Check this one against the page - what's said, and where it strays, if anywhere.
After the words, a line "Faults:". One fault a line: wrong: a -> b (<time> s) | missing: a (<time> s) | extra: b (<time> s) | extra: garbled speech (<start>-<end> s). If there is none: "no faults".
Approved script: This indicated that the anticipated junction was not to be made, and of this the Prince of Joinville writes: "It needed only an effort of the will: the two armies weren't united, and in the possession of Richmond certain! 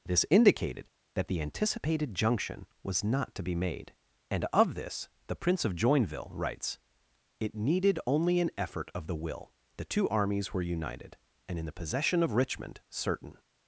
This indicated that the anticipated junction was not to be made, and of this the Prince of Joinville writes: "It needed only an effort of the will: the two armies were united, and in the possession of Richmond certain!
Faults:
wrong: weren't -> were (10.6 s)